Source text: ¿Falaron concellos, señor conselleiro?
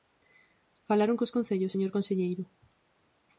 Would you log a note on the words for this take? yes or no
yes